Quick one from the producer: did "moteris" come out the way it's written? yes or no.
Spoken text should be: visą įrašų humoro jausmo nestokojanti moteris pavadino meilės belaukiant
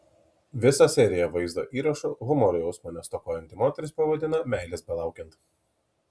yes